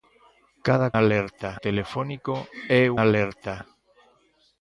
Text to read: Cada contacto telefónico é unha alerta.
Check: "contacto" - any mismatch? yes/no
yes